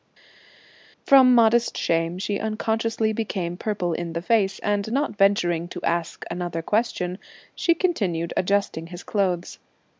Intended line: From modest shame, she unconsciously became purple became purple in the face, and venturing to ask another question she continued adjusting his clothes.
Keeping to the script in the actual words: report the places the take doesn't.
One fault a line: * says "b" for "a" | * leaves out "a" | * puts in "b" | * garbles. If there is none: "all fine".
* leaves out "became purple"
* puts in "not"